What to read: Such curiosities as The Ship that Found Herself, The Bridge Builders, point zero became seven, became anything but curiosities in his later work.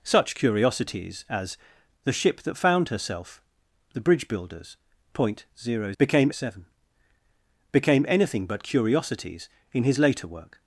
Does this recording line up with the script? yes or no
yes